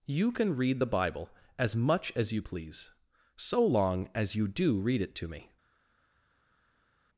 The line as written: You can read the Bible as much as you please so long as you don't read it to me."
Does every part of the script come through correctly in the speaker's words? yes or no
no